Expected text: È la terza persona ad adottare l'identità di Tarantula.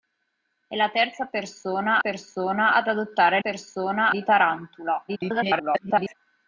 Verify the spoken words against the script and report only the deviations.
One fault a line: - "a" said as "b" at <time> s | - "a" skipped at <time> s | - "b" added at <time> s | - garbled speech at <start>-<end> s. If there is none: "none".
- "persona" added at 2.0 s
- "l'identità" said as "persona" at 3.4 s
- garbled speech at 5.1-6.1 s